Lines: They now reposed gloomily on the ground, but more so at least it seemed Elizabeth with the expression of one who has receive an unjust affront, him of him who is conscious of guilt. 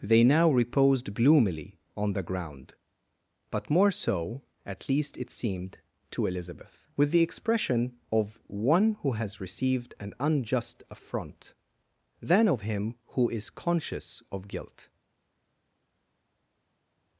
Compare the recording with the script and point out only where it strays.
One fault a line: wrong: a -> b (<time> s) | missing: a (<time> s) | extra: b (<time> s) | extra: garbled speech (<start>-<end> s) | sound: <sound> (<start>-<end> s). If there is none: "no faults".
extra: to (6.1 s)
wrong: receive -> received (9.4 s)
wrong: him -> than (12.2 s)